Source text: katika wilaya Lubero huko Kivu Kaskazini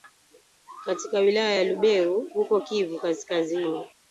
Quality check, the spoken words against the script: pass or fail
fail